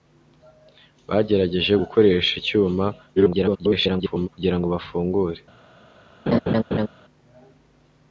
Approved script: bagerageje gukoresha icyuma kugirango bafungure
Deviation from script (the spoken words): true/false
true